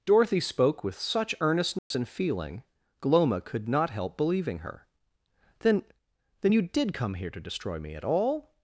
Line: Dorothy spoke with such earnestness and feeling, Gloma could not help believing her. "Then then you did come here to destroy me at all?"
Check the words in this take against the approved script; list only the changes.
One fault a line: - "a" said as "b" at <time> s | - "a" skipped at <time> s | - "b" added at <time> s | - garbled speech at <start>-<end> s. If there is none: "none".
none